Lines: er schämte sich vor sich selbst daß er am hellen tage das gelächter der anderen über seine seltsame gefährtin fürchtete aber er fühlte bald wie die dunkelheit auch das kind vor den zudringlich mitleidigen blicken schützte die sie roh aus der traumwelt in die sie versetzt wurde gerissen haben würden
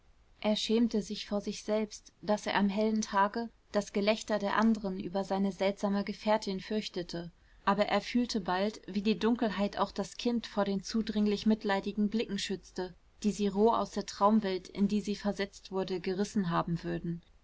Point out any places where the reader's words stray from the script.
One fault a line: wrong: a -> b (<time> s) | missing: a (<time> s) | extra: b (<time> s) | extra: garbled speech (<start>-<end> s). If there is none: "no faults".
no faults